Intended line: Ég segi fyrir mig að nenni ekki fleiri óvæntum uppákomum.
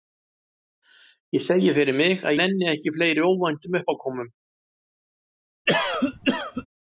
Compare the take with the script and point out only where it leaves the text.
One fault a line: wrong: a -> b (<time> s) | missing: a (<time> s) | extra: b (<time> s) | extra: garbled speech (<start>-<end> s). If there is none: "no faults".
no faults